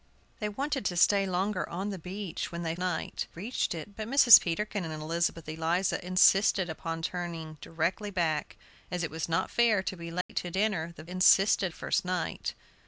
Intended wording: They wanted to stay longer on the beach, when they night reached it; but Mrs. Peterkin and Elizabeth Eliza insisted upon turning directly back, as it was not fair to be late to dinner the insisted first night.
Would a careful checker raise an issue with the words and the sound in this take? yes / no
yes